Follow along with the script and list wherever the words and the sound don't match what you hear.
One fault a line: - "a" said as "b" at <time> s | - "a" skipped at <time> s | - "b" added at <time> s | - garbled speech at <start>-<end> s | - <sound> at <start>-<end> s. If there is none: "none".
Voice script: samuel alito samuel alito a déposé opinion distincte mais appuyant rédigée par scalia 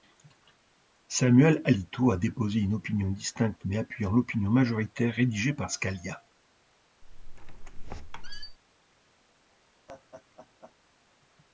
- "samuel alito" skipped at 2.1 s
- "une" added at 2.6 s
- "l'opinion majoritaire" added at 4.1 s
- squeak at 7.0-8.6 s
- laugh at 9.9-10.8 s